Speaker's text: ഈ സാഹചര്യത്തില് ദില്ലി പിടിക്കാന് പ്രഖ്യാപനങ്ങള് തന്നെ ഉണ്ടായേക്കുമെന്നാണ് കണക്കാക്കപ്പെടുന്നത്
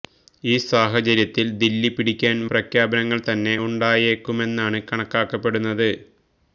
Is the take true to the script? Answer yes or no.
yes